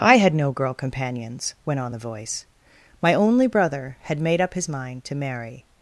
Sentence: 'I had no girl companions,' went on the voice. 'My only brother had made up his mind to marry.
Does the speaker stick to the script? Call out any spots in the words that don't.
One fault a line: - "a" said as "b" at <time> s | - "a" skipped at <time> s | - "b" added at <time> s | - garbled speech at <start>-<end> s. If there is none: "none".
none